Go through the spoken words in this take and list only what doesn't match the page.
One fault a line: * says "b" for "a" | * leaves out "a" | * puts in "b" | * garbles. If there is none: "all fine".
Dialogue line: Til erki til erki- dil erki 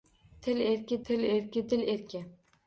all fine